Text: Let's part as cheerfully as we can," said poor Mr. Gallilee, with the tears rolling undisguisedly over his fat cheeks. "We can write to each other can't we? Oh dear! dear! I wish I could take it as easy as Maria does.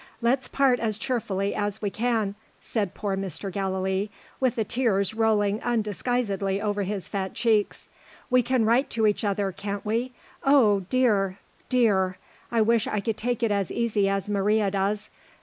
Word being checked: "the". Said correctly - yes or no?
yes